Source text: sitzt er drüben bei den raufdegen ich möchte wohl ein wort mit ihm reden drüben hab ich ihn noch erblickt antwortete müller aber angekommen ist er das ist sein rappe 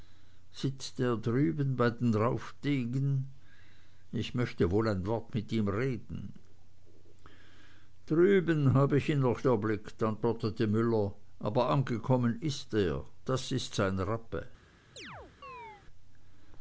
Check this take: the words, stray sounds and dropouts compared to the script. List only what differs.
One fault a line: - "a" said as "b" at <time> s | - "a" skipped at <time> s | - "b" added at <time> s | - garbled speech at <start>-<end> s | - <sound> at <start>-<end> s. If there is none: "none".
- chirp at 15.0-15.8 s